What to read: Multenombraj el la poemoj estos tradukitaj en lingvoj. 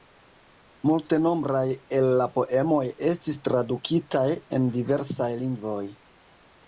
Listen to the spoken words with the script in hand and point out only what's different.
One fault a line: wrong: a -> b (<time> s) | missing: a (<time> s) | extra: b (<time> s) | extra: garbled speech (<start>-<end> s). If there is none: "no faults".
wrong: estos -> estis (3.1 s)
extra: diversaj (4.8 s)